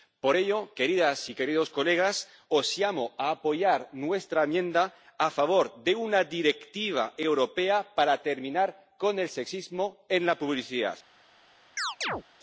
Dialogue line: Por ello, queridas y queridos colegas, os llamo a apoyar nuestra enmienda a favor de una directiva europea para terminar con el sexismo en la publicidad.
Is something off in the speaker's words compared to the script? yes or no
no